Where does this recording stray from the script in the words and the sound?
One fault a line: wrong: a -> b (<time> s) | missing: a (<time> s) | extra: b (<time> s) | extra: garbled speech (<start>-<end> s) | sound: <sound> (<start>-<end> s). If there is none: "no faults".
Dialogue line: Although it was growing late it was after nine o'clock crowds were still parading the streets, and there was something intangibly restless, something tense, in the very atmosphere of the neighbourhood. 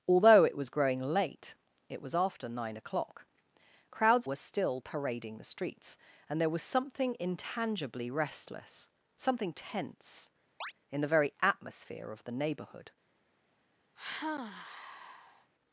sound: chirp (10.6-10.7 s)
sound: sigh (14.0-15.5 s)